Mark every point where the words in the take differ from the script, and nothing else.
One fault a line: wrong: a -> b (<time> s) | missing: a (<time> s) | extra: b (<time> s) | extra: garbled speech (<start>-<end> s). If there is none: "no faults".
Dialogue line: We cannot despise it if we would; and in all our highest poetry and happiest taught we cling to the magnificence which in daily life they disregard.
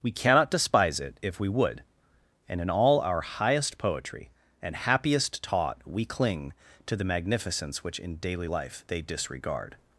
no faults